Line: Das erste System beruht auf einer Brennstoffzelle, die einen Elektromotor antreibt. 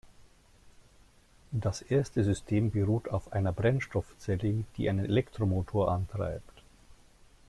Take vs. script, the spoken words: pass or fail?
pass